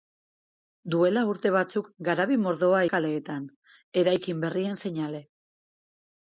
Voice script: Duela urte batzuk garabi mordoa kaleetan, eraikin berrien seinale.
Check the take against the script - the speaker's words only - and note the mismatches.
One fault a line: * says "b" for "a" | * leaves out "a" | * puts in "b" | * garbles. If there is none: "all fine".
all fine